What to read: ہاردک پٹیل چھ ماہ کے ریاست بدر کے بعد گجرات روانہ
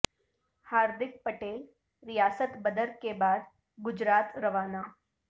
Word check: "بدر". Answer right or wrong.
right